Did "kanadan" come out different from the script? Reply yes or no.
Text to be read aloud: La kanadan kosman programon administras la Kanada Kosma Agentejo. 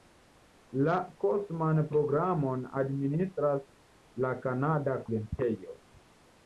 yes